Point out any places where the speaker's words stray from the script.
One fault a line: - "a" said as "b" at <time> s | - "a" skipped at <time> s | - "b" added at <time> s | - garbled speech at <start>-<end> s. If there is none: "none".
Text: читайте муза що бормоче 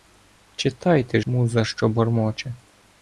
none